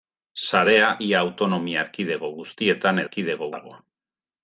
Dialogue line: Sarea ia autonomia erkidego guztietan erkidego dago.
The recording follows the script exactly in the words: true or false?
true